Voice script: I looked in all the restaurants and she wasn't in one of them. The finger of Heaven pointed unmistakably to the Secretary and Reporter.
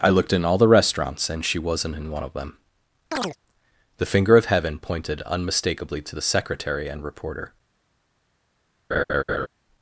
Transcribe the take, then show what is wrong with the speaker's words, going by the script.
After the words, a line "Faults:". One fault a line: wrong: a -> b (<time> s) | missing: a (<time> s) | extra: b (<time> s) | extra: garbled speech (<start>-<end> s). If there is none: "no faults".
I looked in all the restaurants and she wasn't in one of them. The finger of Heaven pointed unmistakably to the Secretary and Reporter.
Faults:
no faults